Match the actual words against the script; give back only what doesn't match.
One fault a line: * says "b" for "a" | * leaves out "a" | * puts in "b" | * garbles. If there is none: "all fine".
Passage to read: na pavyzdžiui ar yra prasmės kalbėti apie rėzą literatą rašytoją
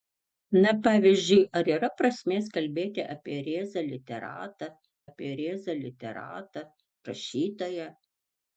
* puts in "apie rėzą literatą"